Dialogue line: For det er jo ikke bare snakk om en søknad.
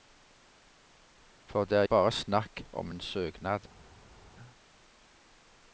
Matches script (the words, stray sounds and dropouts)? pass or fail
fail